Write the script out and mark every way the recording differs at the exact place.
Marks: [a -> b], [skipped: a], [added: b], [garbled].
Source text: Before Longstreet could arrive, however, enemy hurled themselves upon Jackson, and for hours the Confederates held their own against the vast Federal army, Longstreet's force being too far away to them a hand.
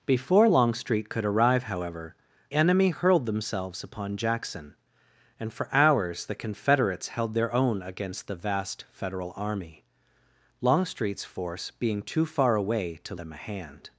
Before Longstreet could arrive, however, enemy hurled themselves upon Jackson, and for hours the Confederates held their own against the vast Federal army, Longstreet's force being too far away to them a hand.